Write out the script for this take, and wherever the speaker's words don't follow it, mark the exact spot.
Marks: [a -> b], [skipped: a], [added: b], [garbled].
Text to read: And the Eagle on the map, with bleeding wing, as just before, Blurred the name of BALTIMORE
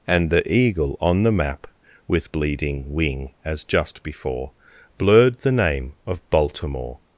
And the Eagle on the map, with bleeding wing, as just before, Blurred the name of BALTIMORE